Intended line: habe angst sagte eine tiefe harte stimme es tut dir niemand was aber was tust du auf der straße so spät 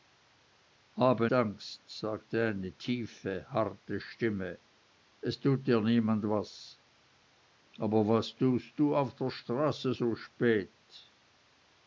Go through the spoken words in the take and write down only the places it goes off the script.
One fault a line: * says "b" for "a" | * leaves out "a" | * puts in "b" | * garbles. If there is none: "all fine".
all fine